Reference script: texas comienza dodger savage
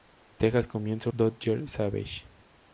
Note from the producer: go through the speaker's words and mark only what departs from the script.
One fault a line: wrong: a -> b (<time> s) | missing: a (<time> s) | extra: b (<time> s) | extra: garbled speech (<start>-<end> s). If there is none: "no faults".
no faults